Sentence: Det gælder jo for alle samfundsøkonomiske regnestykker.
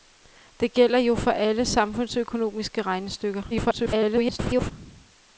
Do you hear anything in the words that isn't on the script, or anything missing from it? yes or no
yes